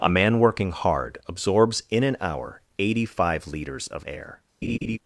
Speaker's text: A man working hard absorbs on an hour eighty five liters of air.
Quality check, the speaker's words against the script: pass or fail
fail